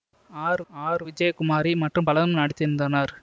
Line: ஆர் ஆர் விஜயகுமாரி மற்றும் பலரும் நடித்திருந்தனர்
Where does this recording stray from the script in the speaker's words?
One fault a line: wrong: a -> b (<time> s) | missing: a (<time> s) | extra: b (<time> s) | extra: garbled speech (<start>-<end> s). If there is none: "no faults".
no faults